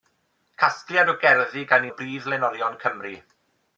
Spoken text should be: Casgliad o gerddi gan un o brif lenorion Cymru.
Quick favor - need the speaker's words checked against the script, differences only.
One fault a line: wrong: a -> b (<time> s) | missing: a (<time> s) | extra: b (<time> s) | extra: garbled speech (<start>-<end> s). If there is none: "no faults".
missing: un (1.9 s)